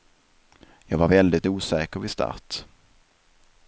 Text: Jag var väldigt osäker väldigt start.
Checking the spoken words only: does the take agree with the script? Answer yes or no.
no